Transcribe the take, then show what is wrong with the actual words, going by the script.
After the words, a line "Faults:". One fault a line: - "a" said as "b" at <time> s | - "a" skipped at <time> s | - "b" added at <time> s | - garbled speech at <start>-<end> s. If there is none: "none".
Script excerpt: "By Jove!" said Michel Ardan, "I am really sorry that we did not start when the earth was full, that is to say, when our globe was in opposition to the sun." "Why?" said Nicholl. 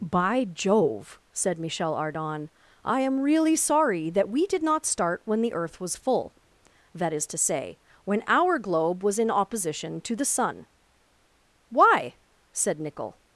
"By Jove!" said Michel Ardan, "I am really sorry that we did not start when the earth was full, that is to say, when our globe was in opposition to the sun." "Why?" said Nicholl.
Faults:
none